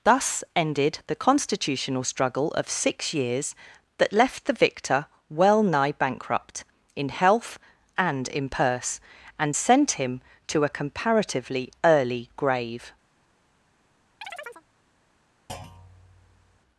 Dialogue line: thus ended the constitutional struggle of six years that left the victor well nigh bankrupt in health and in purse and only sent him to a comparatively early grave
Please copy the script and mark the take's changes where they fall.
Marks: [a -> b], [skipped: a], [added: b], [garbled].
thus ended the constitutional struggle of six years that left the victor well nigh bankrupt in health and in purse and [skipped: only] sent him to a comparatively early grave